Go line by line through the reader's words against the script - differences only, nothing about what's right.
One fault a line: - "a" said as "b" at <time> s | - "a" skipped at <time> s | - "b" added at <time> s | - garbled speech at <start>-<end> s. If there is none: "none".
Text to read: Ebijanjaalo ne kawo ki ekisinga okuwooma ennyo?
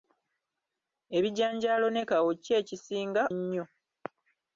- "okuwooma" skipped at 3.2 s